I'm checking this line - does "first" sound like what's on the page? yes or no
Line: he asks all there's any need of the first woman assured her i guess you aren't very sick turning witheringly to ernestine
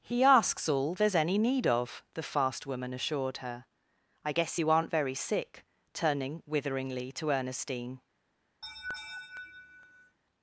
no